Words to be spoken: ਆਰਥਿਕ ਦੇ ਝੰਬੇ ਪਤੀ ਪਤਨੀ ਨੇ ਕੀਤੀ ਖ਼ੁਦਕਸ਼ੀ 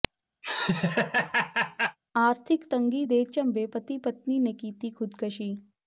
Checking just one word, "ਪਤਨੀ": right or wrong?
right